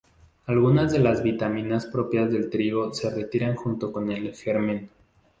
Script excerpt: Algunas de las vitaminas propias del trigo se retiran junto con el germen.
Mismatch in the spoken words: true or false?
false